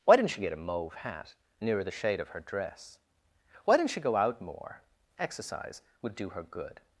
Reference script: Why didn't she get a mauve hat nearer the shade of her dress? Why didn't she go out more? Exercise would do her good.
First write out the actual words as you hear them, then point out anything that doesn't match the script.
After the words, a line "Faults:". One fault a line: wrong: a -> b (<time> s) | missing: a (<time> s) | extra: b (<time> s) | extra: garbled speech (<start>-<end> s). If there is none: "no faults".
Why didn't she get a mauve hat nearer the shade of her dress? Why didn't she go out more? Exercise would do her good.
Faults:
no faults